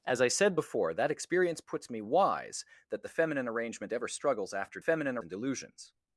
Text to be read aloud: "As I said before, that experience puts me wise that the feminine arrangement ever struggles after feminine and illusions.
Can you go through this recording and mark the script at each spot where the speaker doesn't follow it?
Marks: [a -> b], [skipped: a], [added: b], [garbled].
"As I said before, that experience puts me wise that the feminine arrangement ever struggles after feminine and illusions.